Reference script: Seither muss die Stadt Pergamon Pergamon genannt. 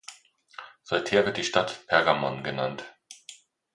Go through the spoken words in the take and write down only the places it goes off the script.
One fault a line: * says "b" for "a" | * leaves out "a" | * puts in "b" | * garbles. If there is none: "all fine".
* says "wird" for "muss"
* leaves out "Pergamon"